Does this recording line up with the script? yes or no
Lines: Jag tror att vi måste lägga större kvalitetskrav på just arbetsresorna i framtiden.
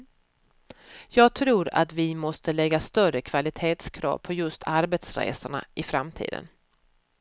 yes